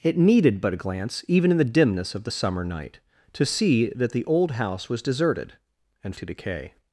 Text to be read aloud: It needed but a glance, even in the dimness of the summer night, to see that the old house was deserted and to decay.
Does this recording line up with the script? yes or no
yes